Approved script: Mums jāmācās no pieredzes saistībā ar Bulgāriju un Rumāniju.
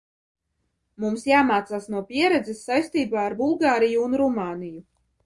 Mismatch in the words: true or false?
false